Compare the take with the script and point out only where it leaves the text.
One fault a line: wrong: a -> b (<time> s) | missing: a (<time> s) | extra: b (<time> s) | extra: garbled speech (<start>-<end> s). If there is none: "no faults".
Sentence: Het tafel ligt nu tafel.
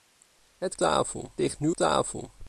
no faults